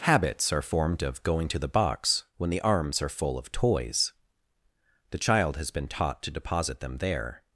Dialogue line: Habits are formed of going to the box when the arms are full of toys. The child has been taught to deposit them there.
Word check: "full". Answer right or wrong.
right